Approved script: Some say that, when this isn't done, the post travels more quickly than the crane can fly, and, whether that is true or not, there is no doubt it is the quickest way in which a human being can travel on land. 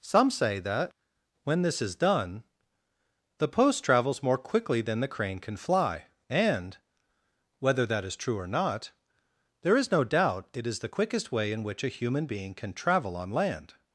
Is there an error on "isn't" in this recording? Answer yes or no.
yes